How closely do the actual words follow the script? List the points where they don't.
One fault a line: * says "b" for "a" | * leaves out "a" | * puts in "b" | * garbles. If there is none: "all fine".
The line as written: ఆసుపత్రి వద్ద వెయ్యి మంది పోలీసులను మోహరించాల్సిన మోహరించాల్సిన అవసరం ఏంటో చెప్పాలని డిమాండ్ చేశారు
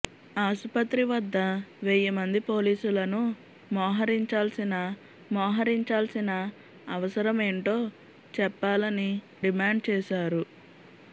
all fine